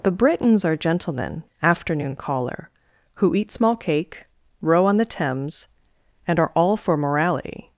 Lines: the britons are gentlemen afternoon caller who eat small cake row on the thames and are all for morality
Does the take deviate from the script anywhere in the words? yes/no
no